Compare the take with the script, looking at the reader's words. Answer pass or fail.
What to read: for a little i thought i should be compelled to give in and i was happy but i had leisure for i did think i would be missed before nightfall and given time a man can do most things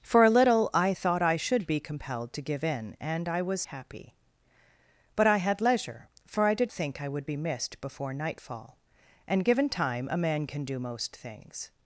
pass